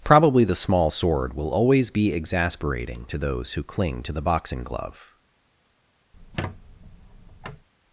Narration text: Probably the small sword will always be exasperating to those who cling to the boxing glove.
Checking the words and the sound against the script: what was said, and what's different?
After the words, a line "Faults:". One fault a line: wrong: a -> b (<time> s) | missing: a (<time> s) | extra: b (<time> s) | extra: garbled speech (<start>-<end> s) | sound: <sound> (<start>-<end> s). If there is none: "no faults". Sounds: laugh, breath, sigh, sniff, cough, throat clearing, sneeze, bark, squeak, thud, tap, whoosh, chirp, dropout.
Probably the small sword will always be exasperating to those who cling to the boxing glove.
Faults:
sound: squeak (6.1-7.7 s)